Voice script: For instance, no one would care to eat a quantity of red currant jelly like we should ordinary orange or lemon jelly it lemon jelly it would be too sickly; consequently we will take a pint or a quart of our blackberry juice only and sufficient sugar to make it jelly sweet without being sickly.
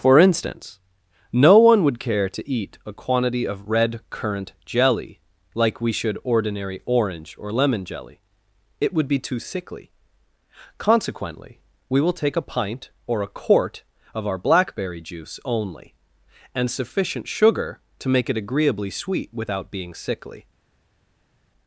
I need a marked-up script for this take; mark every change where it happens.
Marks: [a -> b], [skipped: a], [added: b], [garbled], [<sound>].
For instance, no one would care to eat a quantity of red currant jelly like we should ordinary orange or lemon jelly it [skipped: lemon jelly it] would be too sickly; consequently we will take a pint or a quart of our blackberry juice only and sufficient sugar to make it [jelly -> agreeably] sweet without being sickly.